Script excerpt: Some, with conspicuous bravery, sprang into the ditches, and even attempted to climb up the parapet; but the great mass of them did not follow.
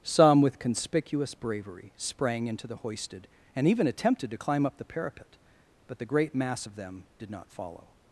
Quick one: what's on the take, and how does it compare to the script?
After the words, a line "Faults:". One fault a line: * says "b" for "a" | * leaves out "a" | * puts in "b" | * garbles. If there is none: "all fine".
Some, with conspicuous bravery, sprang into the hoisted, and even attempted to climb up the parapet; but the great mass of them did not follow.
Faults:
* says "hoisted" for "ditches"